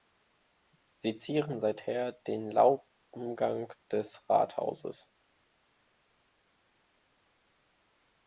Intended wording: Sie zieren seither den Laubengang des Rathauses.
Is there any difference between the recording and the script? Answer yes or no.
no